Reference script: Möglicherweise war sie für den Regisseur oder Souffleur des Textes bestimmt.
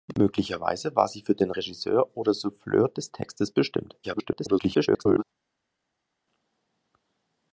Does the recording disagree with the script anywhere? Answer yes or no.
yes